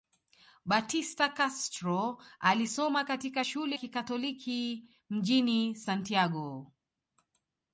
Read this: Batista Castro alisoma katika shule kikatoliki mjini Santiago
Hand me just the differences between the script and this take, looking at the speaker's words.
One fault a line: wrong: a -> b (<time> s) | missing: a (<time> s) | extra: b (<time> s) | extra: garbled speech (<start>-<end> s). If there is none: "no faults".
no faults